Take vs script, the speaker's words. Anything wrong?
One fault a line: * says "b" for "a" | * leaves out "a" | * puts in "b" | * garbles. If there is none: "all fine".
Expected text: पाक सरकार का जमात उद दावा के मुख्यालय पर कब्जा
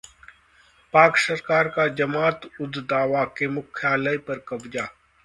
all fine